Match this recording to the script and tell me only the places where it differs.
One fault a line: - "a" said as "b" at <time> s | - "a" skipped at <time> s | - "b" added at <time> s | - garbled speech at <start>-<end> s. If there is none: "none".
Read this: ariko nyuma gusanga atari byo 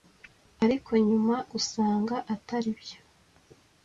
none